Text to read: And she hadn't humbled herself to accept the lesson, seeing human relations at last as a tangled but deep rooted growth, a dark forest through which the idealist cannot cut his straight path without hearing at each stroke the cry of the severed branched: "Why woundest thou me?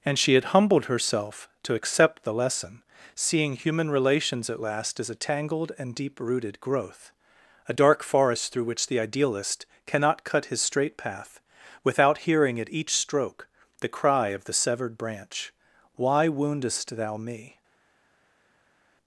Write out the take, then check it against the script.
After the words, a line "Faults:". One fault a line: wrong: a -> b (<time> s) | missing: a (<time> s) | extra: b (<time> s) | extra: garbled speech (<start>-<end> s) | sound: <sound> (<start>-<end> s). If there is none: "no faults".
And she had humbled herself to accept the lesson, seeing human relations at last as a tangled and deep rooted growth, a dark forest through which the idealist cannot cut his straight path without hearing at each stroke the cry of the severed branch: "Why woundest thou me?
Faults:
wrong: hadn't -> had (0.3 s)
wrong: but -> and (5.8 s)
wrong: branched -> branch (15.0 s)